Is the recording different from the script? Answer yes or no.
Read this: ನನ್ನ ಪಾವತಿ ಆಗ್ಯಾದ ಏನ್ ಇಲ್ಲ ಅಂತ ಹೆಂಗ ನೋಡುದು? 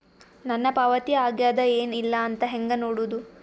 no